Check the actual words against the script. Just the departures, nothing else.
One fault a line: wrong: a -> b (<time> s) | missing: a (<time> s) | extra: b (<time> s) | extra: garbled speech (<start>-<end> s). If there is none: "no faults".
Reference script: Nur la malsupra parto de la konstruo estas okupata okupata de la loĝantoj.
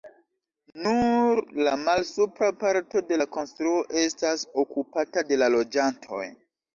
missing: okupata (5.2 s)